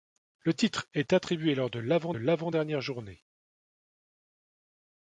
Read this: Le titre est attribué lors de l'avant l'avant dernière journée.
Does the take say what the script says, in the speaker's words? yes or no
yes